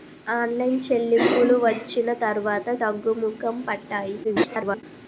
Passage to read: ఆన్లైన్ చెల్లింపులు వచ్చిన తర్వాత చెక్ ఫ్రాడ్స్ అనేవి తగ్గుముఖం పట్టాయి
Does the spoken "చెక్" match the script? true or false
false